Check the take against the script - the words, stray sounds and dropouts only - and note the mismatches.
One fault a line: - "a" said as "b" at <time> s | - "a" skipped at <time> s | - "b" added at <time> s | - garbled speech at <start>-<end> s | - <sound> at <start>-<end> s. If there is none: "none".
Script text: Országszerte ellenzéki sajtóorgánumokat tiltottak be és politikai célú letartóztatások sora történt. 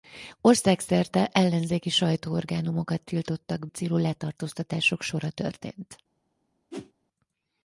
- "be és politikai" skipped at 3.7 s
- whoosh at 6.7-6.9 s